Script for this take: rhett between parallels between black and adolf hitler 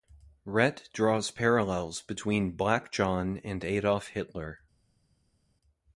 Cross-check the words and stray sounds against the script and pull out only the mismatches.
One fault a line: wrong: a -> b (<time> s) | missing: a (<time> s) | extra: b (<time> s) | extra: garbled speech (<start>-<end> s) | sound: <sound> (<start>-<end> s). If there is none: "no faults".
wrong: between -> draws (0.9 s)
extra: john (2.9 s)